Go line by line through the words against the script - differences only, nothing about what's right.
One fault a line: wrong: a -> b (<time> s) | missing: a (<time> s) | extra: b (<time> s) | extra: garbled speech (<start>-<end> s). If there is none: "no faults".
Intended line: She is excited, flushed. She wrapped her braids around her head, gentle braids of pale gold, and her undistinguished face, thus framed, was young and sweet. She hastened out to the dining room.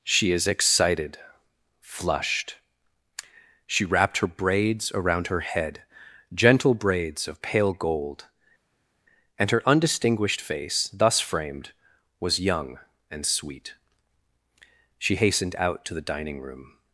no faults